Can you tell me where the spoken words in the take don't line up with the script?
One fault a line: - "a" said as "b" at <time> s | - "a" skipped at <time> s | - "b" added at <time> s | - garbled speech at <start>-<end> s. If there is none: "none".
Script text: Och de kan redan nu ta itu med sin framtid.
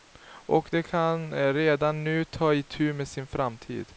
none